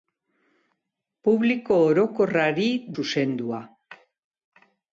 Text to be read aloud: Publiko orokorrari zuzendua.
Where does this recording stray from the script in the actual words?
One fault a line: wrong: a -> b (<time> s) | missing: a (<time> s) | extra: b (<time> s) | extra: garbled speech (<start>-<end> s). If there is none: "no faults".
no faults